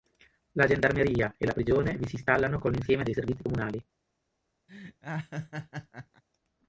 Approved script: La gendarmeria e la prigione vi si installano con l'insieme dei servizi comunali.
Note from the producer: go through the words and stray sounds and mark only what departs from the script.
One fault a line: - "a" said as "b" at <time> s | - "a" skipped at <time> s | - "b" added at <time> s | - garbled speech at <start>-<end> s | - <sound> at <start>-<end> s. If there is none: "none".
- laugh at 4.7-6.2 s